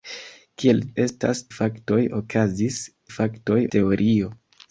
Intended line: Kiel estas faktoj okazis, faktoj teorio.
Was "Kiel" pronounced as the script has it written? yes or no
yes